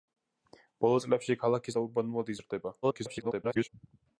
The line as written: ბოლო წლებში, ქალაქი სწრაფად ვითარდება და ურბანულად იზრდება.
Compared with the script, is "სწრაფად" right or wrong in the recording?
wrong